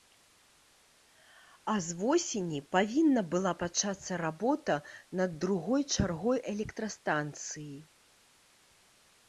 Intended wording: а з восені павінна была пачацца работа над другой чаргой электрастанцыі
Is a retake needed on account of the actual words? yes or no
no